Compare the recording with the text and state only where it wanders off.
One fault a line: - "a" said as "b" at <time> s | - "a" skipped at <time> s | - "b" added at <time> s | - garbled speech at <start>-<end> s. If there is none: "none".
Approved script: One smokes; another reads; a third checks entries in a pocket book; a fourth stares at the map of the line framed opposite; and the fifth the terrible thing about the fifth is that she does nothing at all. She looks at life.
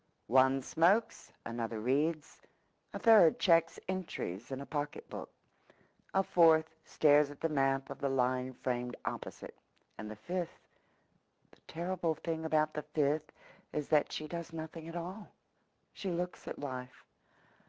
none